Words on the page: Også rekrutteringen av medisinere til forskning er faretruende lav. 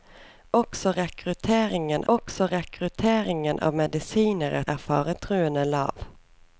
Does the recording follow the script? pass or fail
fail